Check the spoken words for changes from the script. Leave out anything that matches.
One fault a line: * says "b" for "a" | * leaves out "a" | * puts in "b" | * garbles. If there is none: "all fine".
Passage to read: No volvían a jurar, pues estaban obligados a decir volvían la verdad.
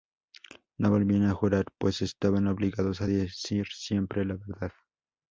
* says "siempre" for "volvían"